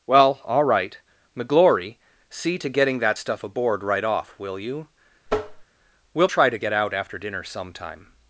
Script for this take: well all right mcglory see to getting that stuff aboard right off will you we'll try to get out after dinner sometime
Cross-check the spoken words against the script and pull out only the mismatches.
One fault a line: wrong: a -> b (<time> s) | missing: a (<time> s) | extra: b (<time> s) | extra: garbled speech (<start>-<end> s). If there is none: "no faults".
no faults